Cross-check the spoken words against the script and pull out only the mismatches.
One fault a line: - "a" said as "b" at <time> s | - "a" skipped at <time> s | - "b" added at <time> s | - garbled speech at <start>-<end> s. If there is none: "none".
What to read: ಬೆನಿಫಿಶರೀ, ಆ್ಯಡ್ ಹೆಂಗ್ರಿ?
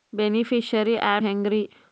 none